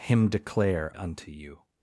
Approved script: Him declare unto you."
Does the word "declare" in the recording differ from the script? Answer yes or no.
no